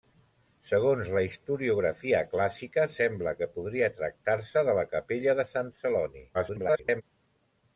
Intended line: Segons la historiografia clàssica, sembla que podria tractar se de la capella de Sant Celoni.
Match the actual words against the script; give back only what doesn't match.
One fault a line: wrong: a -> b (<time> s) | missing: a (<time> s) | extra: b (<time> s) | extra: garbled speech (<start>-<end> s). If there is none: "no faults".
extra: garbled speech (6.3-7.0 s)